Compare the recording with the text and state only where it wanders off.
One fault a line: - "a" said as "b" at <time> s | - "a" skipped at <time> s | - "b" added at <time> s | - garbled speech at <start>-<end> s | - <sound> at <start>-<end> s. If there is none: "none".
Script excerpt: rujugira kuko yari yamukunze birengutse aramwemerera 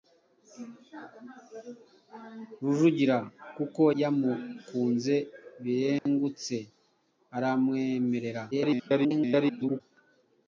- "yari" skipped at 3.8 s
- dropout at 6.0-6.1 s
- garbled speech at 8.5-9.8 s